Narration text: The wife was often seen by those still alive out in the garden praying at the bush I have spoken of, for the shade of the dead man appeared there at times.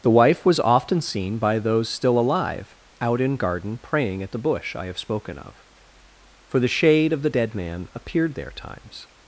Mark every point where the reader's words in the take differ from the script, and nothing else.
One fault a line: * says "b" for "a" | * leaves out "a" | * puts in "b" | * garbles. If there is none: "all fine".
* leaves out "the"
* leaves out "at"